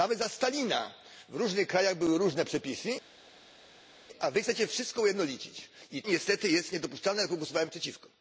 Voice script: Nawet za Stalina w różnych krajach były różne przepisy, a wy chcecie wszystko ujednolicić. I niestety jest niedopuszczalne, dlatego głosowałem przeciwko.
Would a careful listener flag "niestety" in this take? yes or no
no